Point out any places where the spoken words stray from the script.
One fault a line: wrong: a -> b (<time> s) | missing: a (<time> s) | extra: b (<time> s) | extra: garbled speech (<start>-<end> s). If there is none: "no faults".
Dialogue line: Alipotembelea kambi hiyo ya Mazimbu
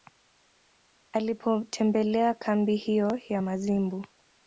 no faults